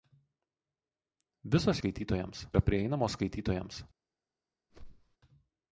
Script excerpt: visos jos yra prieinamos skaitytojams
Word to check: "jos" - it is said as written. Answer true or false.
false